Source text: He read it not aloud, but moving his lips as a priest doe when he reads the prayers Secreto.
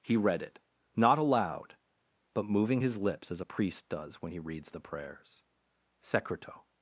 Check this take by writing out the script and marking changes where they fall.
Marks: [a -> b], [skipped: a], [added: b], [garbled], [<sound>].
He read it not aloud, but moving his lips as a priest [doe -> does] when he reads the prayers Secreto.